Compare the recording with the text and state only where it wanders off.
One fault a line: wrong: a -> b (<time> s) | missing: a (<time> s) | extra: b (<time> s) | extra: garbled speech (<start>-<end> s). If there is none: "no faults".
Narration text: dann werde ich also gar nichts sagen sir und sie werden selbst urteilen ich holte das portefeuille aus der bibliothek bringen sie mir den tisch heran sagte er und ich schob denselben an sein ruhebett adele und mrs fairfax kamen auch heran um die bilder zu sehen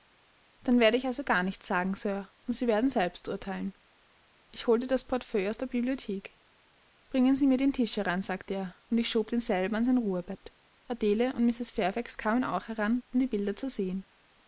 no faults